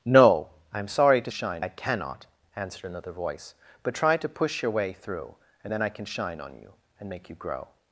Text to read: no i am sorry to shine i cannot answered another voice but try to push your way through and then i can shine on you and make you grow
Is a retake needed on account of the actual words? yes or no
no